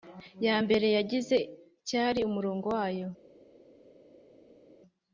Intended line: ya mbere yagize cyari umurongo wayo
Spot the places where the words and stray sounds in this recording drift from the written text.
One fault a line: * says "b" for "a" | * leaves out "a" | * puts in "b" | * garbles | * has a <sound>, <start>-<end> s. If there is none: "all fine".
all fine